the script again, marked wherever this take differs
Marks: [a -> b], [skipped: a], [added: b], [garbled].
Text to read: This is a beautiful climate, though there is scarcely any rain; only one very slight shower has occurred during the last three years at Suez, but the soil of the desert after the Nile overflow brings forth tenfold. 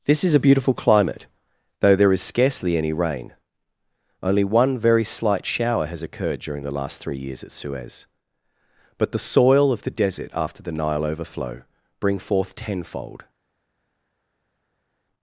This is a beautiful climate, though there is scarcely any rain; only one very slight shower has occurred during the last three years at Suez, but the soil of the desert after the Nile overflow [brings -> bring] forth tenfold.